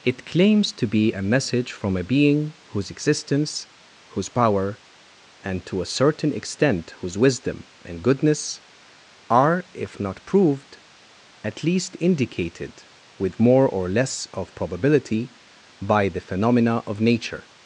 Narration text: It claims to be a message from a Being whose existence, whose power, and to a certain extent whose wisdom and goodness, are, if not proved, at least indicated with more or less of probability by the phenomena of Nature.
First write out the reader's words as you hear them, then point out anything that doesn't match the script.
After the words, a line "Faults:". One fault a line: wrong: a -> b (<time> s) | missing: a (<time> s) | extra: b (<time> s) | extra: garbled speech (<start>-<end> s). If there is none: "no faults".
It claims to be a message from a Being whose existence, whose power, and to a certain extent whose wisdom and goodness, are, if not proved, at least indicated with more or less of probability by the phenomena of Nature.
Faults:
no faults